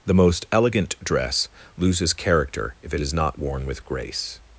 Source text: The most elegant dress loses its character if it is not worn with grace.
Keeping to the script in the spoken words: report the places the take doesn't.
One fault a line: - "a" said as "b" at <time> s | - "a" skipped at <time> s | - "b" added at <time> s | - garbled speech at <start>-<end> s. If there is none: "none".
- "its" skipped at 2.1 s